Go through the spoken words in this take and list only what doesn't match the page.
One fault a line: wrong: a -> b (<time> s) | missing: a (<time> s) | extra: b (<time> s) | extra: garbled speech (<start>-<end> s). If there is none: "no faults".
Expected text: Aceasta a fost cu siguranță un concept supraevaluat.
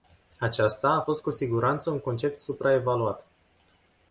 no faults